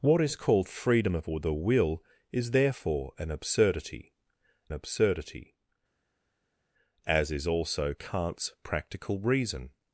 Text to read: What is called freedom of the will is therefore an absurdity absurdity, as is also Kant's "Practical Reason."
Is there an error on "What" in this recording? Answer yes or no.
no